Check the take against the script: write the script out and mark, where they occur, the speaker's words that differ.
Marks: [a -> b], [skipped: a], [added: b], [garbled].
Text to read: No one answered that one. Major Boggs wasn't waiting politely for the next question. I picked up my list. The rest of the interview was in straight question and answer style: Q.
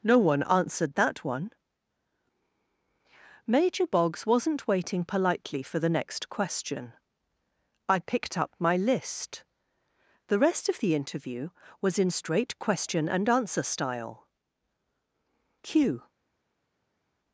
No one answered that one. Major Boggs wasn't waiting politely for the next question. I picked up my list. The rest of the interview was in straight question and answer style: Q.